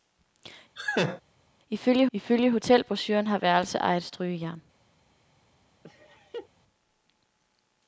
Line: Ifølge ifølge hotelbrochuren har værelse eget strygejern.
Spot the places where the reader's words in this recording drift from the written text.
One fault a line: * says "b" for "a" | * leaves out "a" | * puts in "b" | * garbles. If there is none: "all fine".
all fine